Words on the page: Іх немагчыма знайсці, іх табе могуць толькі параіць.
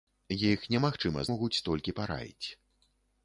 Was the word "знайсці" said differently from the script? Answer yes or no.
yes